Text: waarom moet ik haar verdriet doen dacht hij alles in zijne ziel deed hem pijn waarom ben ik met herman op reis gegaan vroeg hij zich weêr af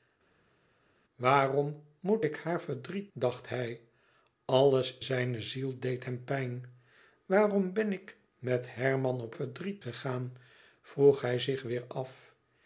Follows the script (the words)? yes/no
no